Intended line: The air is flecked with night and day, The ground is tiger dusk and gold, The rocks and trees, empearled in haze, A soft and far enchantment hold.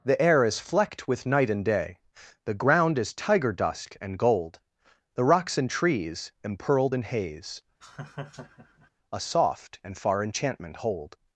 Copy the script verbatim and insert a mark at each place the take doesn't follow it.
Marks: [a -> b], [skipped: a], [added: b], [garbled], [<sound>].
The air is flecked with night and day, The ground is tiger dusk and gold, The rocks and trees, empearled in haze, [laugh] A soft and far enchantment hold.